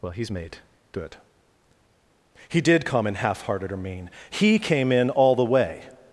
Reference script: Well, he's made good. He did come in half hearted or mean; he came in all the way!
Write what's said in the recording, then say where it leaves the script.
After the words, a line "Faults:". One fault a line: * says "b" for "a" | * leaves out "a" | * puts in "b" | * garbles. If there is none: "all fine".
Well, he's made good. He did come in half hearted or mean; he came in all the way!
Faults:
all fine